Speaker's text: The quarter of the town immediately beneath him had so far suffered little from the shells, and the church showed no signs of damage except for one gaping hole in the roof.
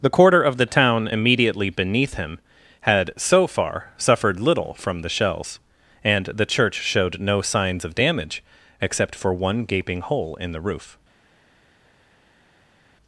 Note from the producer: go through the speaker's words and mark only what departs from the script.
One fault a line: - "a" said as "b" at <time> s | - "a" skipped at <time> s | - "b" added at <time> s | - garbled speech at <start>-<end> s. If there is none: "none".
none